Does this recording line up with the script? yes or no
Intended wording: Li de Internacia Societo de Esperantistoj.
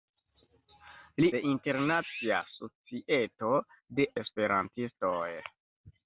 yes